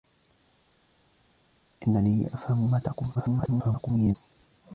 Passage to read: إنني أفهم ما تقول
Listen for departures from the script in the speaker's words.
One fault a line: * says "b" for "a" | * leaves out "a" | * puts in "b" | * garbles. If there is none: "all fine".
* garbles